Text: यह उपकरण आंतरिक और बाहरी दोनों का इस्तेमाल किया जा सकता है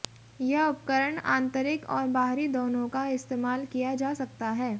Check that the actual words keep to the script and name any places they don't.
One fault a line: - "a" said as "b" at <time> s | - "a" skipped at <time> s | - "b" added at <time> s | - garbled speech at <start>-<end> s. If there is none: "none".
none